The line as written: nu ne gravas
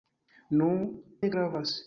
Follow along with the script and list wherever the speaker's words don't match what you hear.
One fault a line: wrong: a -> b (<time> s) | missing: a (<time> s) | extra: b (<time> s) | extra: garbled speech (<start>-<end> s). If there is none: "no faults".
no faults